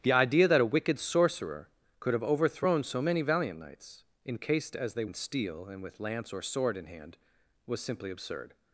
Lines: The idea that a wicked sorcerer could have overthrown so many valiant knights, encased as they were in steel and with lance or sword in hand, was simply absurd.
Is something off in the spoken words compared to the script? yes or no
yes